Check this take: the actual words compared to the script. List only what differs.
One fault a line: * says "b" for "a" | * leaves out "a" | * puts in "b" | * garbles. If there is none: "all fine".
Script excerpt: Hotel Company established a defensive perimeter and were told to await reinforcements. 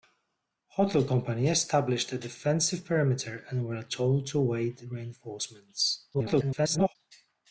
* garbles